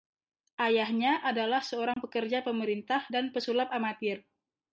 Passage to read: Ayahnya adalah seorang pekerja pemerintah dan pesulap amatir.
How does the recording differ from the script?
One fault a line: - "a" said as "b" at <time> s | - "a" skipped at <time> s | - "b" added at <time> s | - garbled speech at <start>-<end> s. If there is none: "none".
none